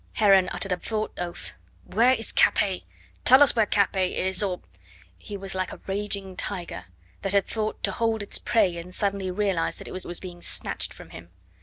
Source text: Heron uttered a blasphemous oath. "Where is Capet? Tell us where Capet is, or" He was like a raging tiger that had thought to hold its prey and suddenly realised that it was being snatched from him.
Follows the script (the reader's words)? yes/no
no